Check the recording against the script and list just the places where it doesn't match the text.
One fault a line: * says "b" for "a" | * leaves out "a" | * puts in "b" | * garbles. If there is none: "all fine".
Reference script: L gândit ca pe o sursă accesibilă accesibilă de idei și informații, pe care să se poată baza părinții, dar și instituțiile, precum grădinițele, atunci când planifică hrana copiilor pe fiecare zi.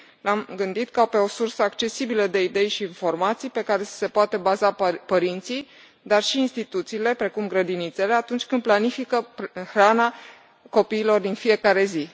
* puts in "am"
* leaves out "accesibilă"
* says "din" for "pe"